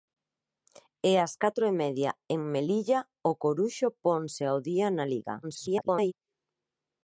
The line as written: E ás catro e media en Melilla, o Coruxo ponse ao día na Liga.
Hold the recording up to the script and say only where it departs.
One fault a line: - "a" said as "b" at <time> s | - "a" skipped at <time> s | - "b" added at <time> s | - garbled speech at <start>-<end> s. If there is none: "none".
- garbled speech at 5.4-6.1 s